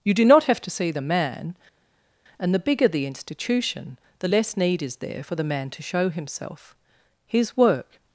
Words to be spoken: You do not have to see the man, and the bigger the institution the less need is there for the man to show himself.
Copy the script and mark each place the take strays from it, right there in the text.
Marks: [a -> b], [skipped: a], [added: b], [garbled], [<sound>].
You do not have to see the man, and the bigger the institution the less need is there for the man to show himself. [added: His work]